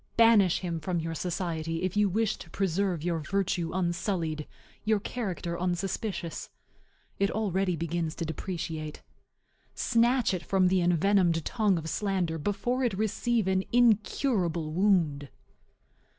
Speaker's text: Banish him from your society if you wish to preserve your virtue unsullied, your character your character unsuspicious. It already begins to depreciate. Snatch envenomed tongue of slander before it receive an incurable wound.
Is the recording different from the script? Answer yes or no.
yes